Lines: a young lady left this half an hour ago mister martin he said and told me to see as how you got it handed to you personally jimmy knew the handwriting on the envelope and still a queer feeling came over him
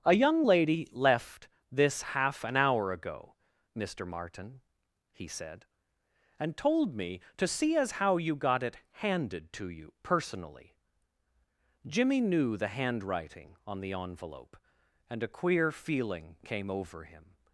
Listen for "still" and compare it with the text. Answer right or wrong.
wrong